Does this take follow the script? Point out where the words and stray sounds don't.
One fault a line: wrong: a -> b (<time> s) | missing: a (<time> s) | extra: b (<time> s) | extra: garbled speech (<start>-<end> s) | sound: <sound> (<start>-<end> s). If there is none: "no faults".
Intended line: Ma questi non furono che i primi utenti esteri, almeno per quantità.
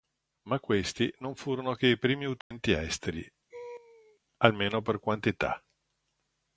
sound: dropout (2.4-2.5 s)
sound: laugh (3.5-4.2 s)